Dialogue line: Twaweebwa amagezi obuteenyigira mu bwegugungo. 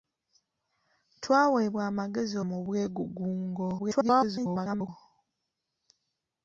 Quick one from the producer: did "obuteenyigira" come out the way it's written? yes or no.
no